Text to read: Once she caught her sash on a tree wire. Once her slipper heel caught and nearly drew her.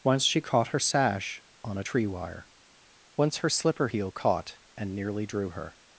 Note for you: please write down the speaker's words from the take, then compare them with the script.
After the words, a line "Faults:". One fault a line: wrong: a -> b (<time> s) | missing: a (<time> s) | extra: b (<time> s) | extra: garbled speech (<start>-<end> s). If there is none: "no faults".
Once she caught her sash on a tree wire. Once her slipper heel caught and nearly drew her.
Faults:
no faults